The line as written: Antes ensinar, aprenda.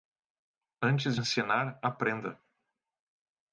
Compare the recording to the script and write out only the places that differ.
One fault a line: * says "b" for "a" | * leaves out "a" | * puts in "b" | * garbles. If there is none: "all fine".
all fine